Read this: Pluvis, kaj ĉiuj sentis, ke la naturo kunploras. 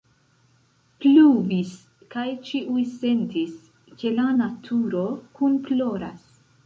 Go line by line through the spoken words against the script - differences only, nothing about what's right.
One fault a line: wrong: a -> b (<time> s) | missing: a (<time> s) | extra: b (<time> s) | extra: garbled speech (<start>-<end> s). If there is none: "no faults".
no faults